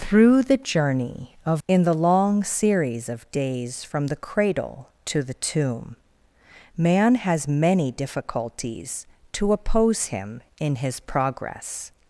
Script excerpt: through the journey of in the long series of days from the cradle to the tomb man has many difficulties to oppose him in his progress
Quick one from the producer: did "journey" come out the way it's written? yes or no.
yes